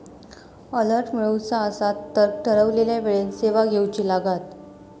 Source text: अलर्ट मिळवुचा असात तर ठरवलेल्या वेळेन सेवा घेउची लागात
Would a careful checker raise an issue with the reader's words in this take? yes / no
no